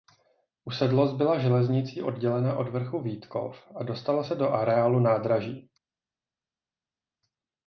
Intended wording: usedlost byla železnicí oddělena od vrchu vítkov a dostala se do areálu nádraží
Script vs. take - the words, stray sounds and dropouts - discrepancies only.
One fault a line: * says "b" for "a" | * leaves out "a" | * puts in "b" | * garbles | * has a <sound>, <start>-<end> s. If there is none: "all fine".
all fine